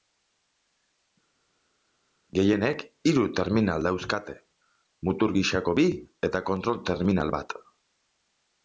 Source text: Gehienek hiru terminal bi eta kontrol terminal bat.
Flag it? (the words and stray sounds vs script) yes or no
yes